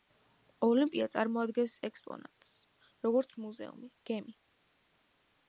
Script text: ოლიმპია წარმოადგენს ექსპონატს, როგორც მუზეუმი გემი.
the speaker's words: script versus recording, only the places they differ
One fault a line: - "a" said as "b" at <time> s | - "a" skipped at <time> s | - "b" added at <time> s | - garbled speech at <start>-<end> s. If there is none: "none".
none